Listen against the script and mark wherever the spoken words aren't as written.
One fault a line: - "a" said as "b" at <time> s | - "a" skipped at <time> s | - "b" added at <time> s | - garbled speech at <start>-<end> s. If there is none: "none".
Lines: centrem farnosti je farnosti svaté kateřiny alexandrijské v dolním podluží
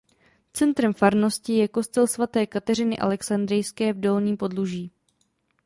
- "farnosti" said as "kostel" at 1.7 s